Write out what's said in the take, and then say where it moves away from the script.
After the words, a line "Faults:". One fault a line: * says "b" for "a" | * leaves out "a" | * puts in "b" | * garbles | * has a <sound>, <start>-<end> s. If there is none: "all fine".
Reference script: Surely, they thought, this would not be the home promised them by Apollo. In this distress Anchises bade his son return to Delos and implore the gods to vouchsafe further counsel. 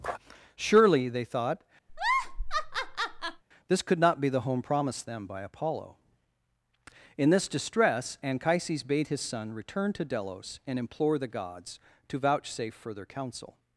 Surely, they thought, this could not be the home promised them by Apollo. In this distress Anchises bade his son return to Delos and implore the gods to vouchsafe further counsel.
Faults:
* has a laugh, 1.9-3.4 s
* says "could" for "would"